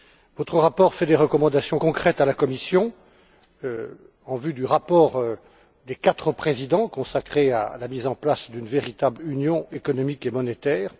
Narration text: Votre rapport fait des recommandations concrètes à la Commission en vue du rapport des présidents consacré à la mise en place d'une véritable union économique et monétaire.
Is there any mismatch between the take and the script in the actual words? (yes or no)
yes